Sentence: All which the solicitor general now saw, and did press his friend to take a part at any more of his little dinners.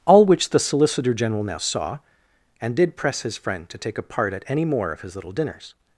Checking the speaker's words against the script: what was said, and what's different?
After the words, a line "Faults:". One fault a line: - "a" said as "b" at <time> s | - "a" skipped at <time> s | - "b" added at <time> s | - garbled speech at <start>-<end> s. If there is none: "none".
All which the solicitor general now saw, and did press his friend to take a part at any more of his little dinners.
Faults:
none